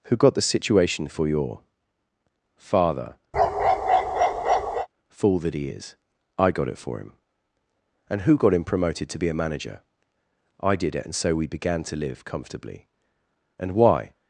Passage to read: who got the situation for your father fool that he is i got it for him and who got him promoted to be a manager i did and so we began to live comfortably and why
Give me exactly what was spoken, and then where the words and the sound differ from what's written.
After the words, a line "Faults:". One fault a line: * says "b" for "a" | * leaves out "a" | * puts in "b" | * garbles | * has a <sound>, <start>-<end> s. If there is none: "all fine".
who got the situation for your father fool that he is i got it for him and who got him promoted to be a manager i did it and so we began to live comfortably and why
Faults:
* has a bark, 3.3-4.9 s
* puts in "it"